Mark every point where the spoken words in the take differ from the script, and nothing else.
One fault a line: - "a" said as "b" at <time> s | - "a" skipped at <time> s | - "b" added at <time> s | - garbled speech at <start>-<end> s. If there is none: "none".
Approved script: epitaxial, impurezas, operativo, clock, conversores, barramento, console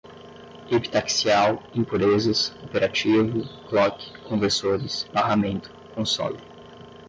none